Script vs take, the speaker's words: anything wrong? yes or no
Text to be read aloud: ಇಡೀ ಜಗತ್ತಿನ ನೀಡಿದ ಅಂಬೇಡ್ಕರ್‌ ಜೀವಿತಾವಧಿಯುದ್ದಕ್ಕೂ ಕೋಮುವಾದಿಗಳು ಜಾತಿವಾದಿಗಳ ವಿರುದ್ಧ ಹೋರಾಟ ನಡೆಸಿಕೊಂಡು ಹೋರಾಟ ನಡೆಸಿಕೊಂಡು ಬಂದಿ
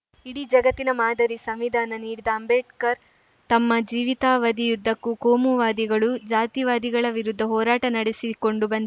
yes